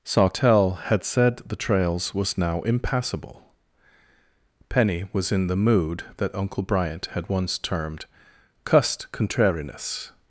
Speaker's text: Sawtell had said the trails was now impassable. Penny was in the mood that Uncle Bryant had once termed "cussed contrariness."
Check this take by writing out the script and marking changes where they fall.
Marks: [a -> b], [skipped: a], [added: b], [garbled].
Sawtell had said the trails was now impassable. Penny was in the mood that Uncle Bryant had once termed "cussed contrariness."